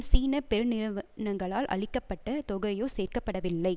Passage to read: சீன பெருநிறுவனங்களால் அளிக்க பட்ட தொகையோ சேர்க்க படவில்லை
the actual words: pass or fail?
pass